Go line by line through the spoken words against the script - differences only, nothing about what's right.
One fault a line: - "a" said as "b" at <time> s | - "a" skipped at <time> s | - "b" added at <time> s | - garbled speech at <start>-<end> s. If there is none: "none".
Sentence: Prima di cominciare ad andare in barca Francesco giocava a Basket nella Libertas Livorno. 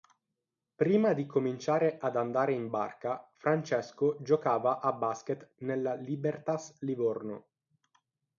none